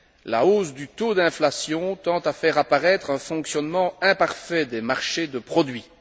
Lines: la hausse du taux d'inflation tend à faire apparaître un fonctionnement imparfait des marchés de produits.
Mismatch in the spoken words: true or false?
false